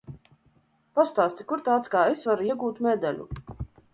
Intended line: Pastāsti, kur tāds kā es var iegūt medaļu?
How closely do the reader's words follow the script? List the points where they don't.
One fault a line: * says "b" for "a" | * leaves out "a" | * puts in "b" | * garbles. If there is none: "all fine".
all fine